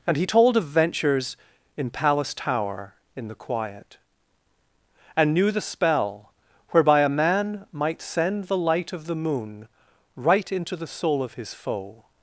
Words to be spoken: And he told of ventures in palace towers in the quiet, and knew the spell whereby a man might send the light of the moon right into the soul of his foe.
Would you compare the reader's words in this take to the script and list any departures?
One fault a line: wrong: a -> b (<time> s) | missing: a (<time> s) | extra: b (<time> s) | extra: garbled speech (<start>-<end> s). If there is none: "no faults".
wrong: towers -> tower (2.3 s)